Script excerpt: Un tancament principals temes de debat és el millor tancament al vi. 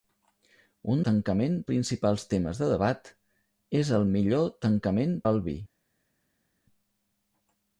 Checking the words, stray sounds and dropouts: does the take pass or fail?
pass